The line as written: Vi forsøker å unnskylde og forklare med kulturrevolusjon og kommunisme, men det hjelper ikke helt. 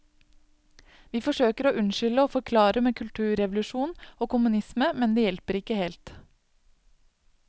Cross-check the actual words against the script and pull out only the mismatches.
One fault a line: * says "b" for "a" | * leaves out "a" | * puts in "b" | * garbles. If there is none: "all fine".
all fine